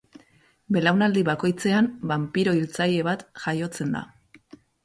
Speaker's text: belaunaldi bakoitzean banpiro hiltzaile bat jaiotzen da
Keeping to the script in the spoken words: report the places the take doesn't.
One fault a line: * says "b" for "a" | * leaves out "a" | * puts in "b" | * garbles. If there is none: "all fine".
all fine